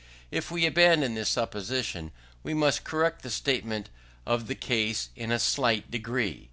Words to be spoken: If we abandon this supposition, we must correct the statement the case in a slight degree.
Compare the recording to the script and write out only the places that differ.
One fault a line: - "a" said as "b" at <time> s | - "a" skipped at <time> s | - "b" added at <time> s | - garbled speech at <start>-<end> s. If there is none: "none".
- "of" added at 4.2 s